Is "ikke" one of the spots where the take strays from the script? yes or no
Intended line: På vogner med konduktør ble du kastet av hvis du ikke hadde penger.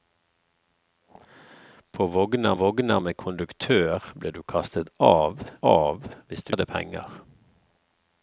yes